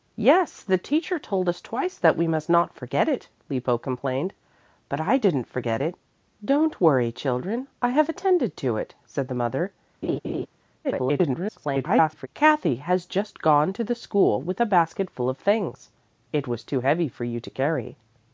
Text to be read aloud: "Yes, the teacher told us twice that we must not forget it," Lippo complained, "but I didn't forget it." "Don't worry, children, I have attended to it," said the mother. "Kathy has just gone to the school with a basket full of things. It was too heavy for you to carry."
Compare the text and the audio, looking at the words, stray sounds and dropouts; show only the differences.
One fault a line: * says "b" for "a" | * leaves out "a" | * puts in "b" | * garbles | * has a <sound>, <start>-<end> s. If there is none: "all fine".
* has a laugh, 10.0-10.5 s
* garbles